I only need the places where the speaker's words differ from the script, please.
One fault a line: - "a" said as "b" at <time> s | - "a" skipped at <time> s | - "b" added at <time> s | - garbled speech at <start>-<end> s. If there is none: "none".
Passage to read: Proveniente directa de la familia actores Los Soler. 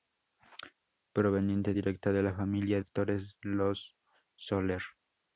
none